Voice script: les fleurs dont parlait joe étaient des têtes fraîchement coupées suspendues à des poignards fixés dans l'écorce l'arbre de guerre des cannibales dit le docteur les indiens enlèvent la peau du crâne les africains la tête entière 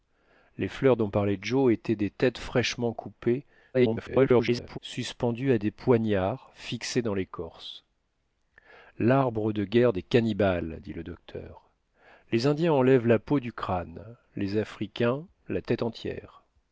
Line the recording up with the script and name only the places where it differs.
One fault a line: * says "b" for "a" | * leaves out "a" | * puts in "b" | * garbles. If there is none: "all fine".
* garbles